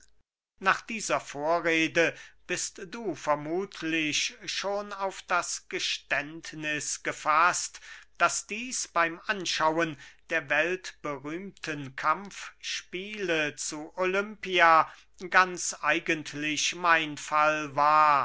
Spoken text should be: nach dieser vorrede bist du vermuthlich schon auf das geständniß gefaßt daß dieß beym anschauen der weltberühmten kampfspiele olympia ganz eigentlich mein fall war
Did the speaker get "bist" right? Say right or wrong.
right